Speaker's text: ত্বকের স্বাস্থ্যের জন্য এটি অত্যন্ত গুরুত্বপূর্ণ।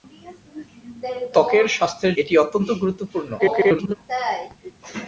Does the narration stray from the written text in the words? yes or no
yes